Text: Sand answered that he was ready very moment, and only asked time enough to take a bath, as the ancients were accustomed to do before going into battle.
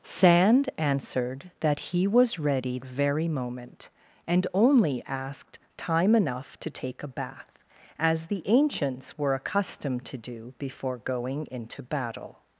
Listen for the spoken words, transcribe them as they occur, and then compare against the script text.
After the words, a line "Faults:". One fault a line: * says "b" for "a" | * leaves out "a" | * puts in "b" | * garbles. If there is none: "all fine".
Sand answered that he was ready very moment, and only asked time enough to take a bath, as the ancients were accustomed to do before going into battle.
Faults:
all fine